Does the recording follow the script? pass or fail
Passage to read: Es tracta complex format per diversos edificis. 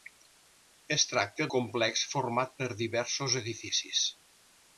pass